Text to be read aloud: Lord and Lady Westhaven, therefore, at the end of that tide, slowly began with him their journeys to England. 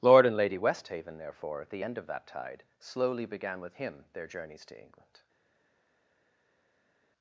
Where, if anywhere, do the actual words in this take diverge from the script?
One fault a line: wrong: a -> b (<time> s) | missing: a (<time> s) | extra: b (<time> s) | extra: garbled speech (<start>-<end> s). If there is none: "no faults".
no faults